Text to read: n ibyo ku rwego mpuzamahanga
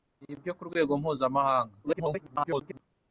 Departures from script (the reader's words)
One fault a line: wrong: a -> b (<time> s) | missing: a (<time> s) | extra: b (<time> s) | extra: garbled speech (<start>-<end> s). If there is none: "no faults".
extra: garbled speech (1.8-2.8 s)